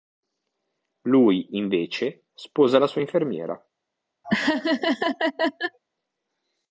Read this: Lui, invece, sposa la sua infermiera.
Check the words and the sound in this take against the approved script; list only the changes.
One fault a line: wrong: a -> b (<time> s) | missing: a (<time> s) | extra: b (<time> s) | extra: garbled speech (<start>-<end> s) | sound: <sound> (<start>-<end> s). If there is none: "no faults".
sound: laugh (4.2-5.8 s)